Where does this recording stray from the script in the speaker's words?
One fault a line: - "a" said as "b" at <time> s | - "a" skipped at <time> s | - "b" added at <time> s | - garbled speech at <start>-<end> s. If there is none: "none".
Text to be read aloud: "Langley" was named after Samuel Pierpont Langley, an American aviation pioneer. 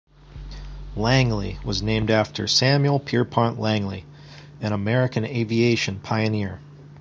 none